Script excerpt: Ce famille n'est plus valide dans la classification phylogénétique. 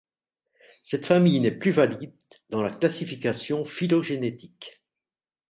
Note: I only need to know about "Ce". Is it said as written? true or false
false